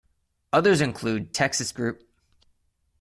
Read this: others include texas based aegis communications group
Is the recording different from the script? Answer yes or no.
yes